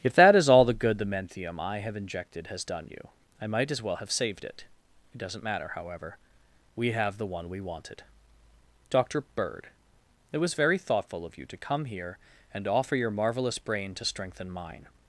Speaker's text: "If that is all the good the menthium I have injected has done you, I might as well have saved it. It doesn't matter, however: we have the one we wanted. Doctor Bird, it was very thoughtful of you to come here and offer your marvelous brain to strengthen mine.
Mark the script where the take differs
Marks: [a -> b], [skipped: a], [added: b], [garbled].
"If that is all the good the menthium I have injected has done you, I might as well have saved it. It doesn't matter, however: we have the one we wanted. Doctor Bird, it was very thoughtful of you to come here and offer your marvelous brain to strengthen mine.